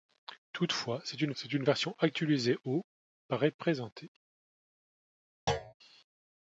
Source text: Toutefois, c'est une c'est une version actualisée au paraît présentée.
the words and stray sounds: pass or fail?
fail